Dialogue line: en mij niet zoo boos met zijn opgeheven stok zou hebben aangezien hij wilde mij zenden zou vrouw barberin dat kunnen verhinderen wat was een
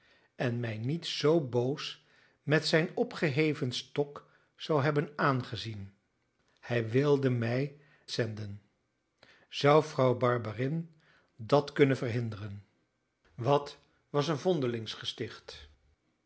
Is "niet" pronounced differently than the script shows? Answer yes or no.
no